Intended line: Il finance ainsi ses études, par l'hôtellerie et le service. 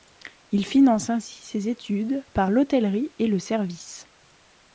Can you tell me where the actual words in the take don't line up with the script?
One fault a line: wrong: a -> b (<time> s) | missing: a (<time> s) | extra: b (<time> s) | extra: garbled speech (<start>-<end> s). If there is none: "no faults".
no faults